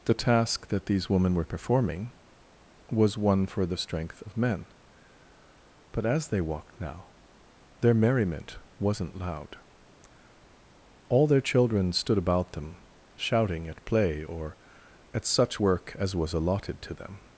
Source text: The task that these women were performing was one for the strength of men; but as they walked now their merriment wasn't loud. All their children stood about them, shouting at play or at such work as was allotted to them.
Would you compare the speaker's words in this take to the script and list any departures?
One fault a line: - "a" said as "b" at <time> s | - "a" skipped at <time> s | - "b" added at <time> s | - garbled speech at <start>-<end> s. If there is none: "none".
none